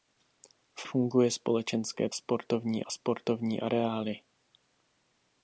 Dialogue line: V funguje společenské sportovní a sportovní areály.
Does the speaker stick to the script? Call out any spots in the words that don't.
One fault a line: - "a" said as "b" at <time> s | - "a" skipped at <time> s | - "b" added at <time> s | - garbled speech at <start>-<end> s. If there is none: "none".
none